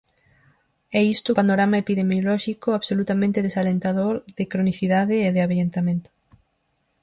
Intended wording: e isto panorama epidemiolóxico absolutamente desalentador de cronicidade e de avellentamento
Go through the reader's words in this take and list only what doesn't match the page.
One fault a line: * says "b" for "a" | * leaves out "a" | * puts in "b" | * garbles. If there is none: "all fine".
all fine